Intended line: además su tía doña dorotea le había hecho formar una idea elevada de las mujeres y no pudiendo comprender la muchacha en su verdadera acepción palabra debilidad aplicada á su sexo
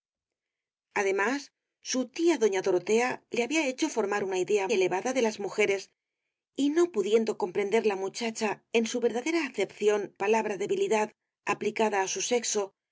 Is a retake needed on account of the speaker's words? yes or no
no